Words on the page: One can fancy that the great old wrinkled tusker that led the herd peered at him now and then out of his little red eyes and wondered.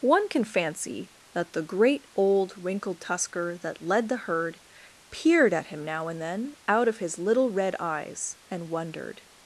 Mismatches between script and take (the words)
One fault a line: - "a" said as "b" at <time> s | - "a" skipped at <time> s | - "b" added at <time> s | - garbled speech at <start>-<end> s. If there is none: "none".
none